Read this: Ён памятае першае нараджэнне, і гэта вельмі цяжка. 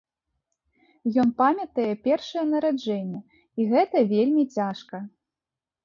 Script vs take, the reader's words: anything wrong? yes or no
no